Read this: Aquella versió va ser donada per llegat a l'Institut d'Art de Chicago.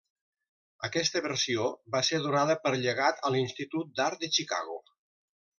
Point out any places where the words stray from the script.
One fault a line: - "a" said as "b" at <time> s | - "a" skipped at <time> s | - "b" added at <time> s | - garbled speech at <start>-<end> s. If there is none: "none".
- "Aquella" said as "Aquesta" at 0.9 s